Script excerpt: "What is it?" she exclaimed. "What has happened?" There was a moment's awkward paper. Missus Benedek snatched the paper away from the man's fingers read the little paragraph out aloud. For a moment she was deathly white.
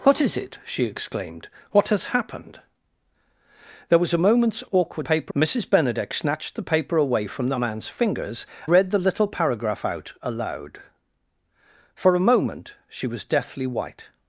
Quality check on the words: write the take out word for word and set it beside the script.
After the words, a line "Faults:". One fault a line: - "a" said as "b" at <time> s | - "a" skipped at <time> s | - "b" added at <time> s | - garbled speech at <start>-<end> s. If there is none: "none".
"What is it?" she exclaimed. "What has happened?" There was a moment's awkward paper. Missus Benedek snatched the paper away from the man's fingers read the little paragraph out aloud. For a moment she was deathly white.
Faults:
none